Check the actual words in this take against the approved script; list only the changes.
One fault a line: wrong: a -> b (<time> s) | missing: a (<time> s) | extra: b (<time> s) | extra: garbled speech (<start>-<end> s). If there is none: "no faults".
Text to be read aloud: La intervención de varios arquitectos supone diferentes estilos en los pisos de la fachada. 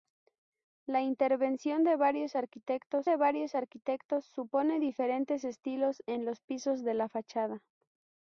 extra: de varios arquitectos (3.0 s)